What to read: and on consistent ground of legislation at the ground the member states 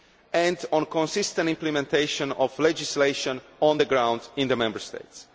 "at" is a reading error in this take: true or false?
true